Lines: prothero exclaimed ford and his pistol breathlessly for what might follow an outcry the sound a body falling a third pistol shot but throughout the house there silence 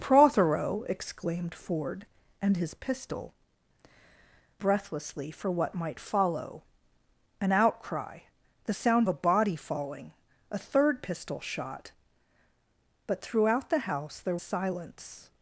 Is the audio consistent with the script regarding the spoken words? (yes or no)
yes